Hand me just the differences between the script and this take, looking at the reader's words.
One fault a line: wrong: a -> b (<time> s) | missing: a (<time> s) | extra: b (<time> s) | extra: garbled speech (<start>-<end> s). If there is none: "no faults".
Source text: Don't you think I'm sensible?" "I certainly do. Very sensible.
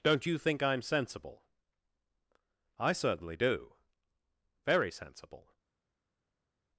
no faults